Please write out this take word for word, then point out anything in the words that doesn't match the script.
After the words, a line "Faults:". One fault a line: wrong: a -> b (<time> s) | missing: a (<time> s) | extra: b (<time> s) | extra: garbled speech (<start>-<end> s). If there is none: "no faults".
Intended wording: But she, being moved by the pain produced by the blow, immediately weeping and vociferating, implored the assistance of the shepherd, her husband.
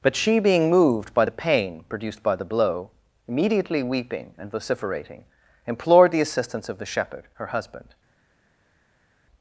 But she, being moved by the pain produced by the blow, immediately weeping and vociferating, implored the assistance of the shepherd, her husband.
Faults:
no faults